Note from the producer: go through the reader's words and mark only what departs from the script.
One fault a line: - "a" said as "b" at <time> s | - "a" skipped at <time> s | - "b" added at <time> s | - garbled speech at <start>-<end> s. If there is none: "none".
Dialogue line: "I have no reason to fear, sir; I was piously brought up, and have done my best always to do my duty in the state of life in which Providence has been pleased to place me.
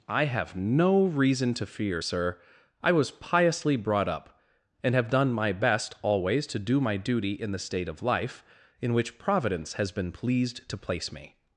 none